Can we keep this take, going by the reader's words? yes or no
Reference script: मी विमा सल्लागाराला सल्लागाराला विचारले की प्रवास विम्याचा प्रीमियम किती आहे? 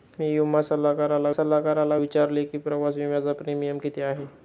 yes